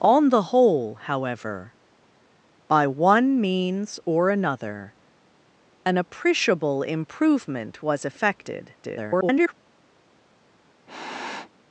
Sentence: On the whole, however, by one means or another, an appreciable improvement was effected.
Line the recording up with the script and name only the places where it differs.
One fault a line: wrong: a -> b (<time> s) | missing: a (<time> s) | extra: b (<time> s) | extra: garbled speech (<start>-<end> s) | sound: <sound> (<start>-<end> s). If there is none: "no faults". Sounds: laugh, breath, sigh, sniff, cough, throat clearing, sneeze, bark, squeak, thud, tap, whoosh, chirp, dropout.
extra: garbled speech (8.8-9.5 s)
sound: sniff (10.9-11.5 s)